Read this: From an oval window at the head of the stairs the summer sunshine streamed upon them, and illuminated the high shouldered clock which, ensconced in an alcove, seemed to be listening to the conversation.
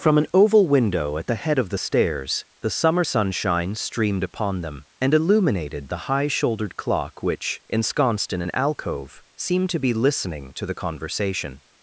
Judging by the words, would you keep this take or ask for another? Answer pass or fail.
pass